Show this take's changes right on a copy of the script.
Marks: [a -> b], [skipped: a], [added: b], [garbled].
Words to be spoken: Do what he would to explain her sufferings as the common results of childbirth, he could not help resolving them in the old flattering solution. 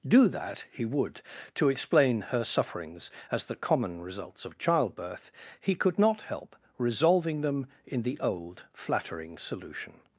Do [what -> that] he would to explain her sufferings as the common results of childbirth, he could not help resolving them in the old flattering solution.